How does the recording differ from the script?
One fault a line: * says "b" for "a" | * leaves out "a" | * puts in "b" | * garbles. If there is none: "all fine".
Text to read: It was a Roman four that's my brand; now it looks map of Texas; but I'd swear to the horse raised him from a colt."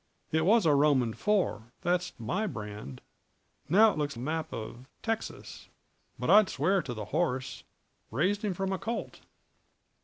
all fine